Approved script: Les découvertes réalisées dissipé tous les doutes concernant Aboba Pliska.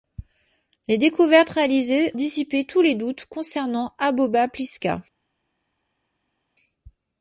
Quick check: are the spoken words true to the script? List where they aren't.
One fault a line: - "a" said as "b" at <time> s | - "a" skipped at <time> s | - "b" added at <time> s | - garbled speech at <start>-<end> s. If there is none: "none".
none